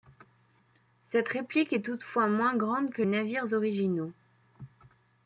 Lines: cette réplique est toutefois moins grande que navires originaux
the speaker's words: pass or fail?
pass